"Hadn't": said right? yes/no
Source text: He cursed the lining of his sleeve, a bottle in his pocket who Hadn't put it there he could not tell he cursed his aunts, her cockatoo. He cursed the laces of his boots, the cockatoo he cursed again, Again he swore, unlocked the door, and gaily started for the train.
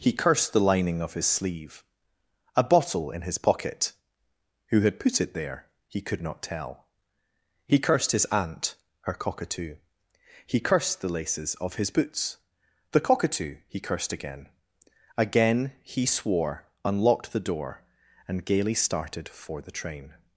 no